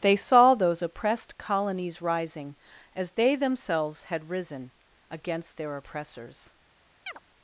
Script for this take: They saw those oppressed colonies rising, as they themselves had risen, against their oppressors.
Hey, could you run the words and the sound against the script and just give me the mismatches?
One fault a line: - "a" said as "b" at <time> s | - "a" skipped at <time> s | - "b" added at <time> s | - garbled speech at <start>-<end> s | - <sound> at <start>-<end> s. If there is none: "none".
- chirp at 7.1-7.2 s